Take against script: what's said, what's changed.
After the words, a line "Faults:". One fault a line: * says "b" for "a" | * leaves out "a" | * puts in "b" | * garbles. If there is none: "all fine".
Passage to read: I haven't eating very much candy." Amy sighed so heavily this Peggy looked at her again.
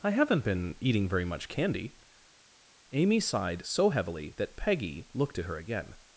I haven't been eating very much candy." Amy sighed so heavily that Peggy looked at her again.
Faults:
* puts in "been"
* says "that" for "this"